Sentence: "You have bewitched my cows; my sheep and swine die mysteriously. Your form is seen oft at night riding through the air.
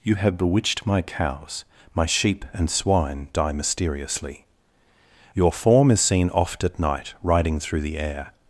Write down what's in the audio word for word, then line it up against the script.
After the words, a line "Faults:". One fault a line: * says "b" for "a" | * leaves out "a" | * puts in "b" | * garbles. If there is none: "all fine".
"You have bewitched my cows; my sheep and swine die mysteriously. Your form is seen oft at night riding through the air.
Faults:
all fine